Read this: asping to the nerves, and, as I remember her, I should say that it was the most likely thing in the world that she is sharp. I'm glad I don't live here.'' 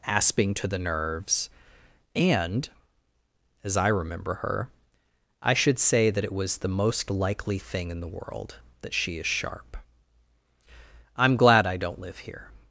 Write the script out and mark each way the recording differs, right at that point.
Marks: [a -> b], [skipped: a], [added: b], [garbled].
asping to the nerves, and, as I remember her, I should say that it was the most likely thing in the world that she is sharp. I'm glad I don't live here.''